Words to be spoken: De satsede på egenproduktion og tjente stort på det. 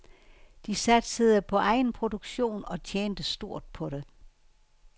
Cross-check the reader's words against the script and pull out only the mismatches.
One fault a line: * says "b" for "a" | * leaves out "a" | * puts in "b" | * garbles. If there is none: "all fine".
all fine